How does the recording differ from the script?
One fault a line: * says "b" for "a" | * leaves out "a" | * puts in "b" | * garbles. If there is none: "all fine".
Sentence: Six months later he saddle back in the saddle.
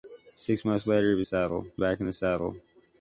all fine